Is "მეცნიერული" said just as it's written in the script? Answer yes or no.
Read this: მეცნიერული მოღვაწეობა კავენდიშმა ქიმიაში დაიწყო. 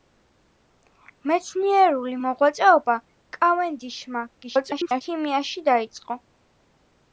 yes